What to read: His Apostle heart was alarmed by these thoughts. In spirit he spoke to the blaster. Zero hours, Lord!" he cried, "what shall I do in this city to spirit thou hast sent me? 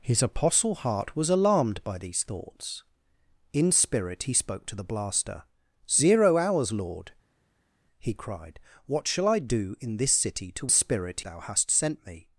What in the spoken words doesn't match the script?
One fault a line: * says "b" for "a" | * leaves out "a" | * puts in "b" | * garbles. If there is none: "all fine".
all fine